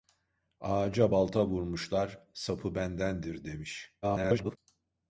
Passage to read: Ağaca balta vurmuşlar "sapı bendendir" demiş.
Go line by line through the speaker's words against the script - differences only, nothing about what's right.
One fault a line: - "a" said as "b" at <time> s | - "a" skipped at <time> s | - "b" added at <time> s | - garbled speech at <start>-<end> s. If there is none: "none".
- garbled speech at 4.0-4.6 s